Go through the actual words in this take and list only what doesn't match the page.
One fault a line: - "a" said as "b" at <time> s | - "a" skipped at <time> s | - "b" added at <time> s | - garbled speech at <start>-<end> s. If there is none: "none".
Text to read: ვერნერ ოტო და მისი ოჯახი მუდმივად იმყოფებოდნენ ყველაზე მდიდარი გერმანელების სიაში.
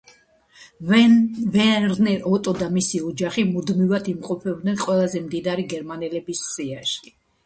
none